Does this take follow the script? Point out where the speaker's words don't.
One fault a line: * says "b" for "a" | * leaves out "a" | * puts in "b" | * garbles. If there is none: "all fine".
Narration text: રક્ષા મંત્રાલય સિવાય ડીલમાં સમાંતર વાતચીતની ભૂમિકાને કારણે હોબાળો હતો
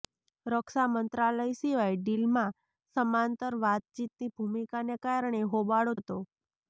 all fine